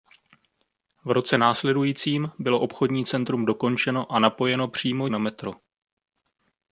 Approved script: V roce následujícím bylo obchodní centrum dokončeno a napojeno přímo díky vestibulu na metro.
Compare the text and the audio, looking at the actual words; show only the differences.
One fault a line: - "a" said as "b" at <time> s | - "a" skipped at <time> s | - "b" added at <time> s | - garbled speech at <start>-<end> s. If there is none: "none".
- "díky vestibulu" skipped at 5.1 s